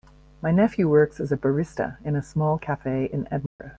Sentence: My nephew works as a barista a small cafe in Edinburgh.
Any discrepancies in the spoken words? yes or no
yes